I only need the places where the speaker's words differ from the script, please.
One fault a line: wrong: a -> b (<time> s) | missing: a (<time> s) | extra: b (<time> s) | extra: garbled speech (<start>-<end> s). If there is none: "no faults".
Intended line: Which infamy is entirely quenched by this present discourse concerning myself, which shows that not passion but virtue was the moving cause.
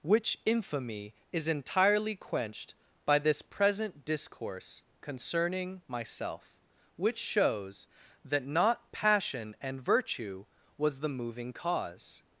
wrong: but -> and (9.6 s)